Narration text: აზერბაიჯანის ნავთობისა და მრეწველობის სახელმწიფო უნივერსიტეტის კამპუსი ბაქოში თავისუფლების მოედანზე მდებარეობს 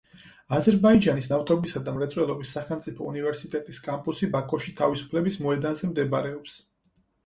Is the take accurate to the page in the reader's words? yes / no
yes